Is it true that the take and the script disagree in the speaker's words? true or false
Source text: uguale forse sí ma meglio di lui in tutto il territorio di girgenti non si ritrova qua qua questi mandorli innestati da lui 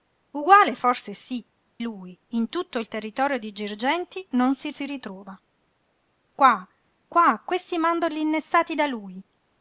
true